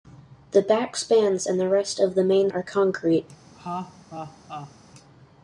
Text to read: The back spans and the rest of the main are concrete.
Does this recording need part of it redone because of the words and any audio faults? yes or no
yes